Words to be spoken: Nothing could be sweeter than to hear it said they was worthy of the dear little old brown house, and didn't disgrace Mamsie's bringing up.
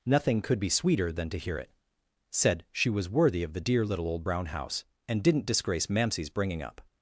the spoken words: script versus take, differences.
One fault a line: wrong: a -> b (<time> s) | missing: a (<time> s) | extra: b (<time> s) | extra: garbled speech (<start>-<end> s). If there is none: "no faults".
wrong: they -> she (2.7 s)